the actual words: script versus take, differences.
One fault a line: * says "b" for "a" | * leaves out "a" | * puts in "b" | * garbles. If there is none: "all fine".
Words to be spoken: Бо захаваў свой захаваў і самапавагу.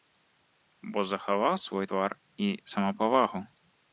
* says "твар" for "захаваў"